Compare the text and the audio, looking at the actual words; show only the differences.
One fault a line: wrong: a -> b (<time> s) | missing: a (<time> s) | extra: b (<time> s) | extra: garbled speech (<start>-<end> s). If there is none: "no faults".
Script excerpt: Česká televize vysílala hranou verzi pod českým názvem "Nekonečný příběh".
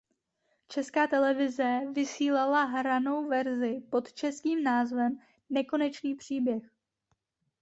no faults